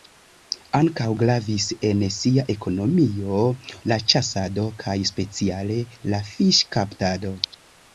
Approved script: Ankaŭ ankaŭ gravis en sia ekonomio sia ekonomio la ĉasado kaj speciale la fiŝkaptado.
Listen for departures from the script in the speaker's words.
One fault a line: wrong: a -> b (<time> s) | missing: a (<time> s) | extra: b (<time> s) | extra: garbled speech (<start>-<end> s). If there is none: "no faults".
missing: ankaŭ (1.1 s)
missing: sia ekonomio (3.5 s)